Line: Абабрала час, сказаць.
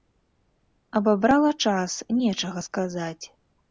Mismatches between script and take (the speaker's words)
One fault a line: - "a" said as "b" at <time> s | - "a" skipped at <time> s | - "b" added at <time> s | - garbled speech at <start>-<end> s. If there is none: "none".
- "нечага" added at 2.2 s